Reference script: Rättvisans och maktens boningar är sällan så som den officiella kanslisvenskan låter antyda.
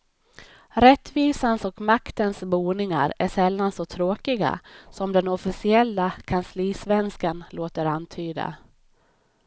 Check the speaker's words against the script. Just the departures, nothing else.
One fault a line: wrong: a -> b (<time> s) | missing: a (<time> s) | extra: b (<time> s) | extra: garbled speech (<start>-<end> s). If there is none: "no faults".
extra: tråkiga (3.8 s)